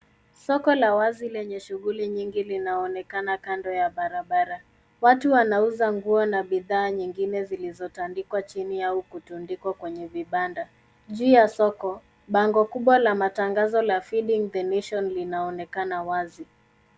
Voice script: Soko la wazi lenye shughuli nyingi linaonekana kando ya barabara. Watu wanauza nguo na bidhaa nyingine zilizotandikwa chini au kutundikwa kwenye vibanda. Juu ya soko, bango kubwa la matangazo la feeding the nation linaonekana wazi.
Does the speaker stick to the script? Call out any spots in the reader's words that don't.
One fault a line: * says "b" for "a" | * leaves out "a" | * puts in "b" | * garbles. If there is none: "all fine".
all fine